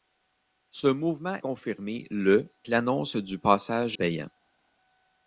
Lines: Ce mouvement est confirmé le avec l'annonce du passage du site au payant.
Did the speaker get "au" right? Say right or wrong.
wrong